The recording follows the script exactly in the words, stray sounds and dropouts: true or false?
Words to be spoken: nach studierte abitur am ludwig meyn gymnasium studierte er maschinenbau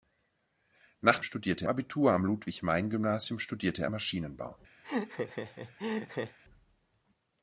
false